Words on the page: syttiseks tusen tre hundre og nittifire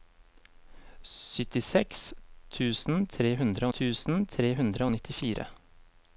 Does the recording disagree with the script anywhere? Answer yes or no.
yes